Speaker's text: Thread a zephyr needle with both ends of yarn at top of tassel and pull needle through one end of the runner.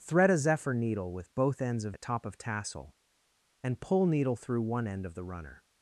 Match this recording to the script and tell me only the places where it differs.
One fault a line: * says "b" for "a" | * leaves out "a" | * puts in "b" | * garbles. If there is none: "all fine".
* leaves out "yarn"